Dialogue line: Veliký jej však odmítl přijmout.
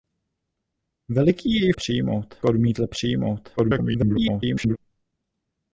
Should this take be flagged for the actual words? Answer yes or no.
yes